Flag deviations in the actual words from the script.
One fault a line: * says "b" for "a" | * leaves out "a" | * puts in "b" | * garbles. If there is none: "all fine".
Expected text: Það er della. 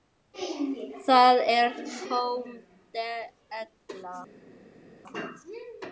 * puts in "tóm"